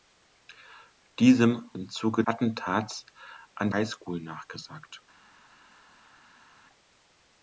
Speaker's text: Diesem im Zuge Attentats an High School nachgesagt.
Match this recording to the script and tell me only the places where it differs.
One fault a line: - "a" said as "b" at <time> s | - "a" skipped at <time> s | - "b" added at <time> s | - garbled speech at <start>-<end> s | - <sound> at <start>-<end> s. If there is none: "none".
none